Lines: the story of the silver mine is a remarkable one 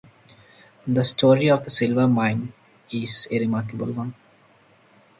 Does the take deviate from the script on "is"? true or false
false